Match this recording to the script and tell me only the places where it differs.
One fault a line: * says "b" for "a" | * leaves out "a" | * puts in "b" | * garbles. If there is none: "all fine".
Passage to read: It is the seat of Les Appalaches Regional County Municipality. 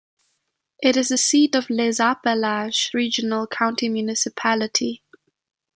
all fine